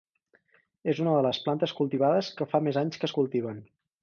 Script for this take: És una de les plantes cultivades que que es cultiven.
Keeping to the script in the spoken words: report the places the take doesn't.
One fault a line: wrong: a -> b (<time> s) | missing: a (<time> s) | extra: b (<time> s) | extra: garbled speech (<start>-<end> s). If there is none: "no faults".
extra: fa més anys (2.5 s)